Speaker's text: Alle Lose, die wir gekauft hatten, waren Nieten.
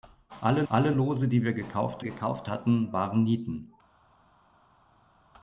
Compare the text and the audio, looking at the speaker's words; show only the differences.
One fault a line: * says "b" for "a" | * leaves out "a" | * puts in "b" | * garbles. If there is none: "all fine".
* puts in "alle"
* puts in "gekauft"